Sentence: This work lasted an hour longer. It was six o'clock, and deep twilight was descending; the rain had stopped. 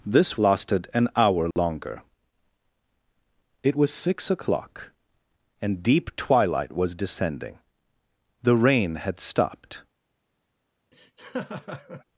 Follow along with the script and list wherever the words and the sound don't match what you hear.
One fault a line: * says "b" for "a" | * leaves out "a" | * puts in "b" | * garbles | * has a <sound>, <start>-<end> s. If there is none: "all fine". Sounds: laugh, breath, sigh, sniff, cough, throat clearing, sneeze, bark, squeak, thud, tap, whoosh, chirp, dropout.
* leaves out "work"
* has a dropout, 1.5-1.6 s
* has a laugh, 10.9-12.0 s